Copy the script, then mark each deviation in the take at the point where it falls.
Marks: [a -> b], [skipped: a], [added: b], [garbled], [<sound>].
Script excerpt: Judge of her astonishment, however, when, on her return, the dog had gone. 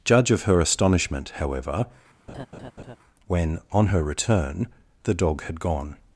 Judge of her astonishment, however, [laugh] when, on her return, the dog had gone.